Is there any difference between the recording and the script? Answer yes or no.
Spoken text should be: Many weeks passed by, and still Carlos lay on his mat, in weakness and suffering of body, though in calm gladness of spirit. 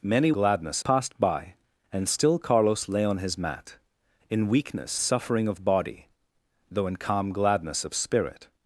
yes